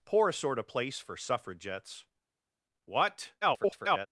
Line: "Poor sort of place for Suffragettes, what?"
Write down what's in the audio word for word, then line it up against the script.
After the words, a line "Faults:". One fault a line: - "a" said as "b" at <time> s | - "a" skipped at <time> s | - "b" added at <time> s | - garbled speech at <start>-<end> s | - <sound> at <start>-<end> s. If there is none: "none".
"Poor sort of place for Suffragettes, what?" [garbled]
Faults:
- garbled speech at 3.4-4.1 s